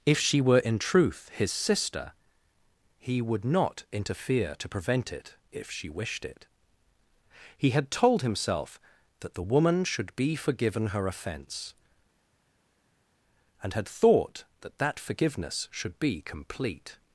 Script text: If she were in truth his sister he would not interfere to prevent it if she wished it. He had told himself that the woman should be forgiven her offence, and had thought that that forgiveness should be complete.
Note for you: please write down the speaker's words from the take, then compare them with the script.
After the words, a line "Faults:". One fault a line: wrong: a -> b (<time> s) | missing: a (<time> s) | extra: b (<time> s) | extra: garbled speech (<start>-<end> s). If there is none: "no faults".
If she were in truth his sister he would not interfere to prevent it if she wished it. He had told himself that the woman should be forgiven her offence, and had thought that that forgiveness should be complete.
Faults:
no faults